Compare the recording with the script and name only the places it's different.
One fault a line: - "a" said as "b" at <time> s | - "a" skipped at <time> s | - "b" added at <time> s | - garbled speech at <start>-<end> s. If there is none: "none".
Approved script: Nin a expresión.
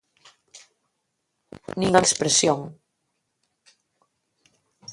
none